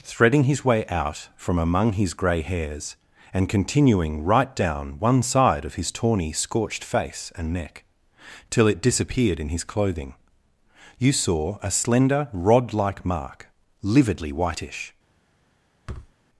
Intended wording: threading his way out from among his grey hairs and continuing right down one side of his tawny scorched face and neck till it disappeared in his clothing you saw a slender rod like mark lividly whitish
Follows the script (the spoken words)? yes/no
yes